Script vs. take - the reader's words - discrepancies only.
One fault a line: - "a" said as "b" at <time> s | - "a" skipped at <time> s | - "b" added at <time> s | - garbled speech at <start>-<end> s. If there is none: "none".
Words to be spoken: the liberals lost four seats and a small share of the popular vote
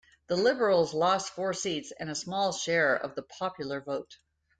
none